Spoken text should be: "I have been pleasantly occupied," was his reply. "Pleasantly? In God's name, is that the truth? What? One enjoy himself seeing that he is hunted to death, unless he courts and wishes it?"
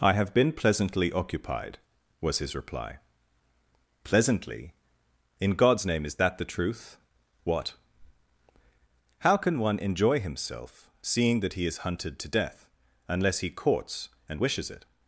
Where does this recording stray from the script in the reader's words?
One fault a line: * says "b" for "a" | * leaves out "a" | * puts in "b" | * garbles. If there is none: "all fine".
* puts in "How can"